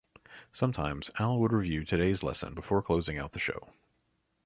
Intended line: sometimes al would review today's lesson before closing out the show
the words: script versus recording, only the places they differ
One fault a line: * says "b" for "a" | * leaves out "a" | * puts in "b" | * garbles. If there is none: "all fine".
all fine